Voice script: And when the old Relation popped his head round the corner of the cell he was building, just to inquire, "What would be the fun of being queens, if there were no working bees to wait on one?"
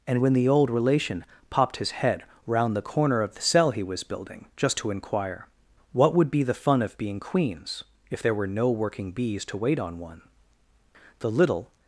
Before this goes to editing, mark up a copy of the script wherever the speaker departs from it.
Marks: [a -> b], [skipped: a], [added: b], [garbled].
And when the old Relation popped his head round the corner of the cell he was building, just to inquire, "What would be the fun of being queens, if there were no working bees to wait on one?" [added: the little]